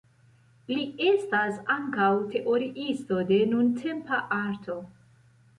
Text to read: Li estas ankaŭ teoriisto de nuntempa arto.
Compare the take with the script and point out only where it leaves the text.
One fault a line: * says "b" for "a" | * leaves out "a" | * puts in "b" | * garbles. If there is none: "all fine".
all fine